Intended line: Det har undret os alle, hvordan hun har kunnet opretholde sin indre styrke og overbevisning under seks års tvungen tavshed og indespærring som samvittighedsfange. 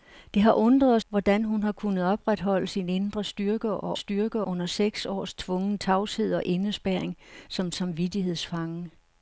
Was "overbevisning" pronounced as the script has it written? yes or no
no